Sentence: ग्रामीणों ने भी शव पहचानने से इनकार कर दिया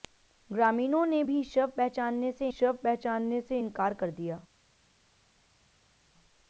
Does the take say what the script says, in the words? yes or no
no